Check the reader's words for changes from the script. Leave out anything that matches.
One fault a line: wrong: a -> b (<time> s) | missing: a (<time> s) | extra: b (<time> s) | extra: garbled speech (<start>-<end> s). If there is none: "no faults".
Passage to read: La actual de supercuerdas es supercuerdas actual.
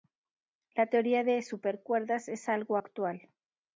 wrong: actual -> teoría (0.8 s)
wrong: supercuerdas -> algo (2.5 s)